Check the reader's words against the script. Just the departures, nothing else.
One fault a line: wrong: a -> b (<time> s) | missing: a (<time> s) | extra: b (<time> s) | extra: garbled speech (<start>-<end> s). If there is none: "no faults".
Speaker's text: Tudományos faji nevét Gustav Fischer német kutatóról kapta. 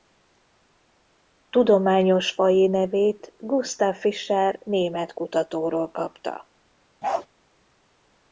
no faults